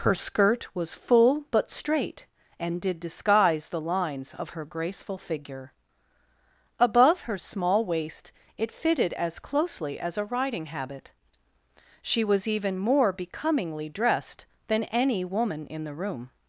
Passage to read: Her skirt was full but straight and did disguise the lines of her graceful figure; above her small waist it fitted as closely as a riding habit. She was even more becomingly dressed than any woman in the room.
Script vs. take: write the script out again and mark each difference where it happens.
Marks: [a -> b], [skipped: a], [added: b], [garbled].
Her skirt was full but straight and did disguise the lines of her graceful figure; above her small waist it fitted as closely as a riding habit. She was even more becomingly dressed than any woman in the room.